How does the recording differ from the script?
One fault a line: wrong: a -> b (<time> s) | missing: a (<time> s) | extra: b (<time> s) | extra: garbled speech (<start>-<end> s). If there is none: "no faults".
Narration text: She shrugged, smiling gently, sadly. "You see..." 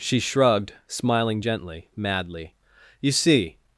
wrong: sadly -> madly (2.0 s)